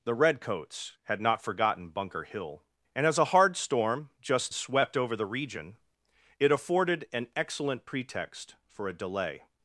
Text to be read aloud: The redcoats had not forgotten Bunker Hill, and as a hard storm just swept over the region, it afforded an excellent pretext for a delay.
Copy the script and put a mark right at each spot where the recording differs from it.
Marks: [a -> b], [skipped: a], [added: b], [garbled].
The redcoats had not forgotten Bunker Hill, and as a hard storm just swept over the region, it afforded an excellent pretext for a delay.